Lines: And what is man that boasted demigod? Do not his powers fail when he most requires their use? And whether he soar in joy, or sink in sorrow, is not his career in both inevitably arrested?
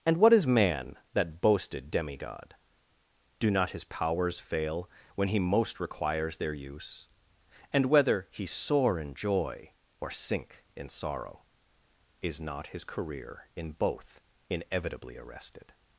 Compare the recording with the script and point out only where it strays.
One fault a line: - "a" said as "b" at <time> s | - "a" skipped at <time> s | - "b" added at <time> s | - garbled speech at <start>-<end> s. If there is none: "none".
none